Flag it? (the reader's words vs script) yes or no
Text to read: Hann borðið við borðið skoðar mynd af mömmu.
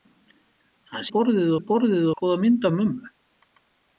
no